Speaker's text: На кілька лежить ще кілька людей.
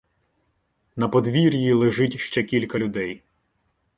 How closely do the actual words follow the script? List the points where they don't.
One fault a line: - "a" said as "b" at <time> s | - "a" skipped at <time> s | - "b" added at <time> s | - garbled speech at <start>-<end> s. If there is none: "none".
- "кілька" said as "подвір'ї" at 1.1 s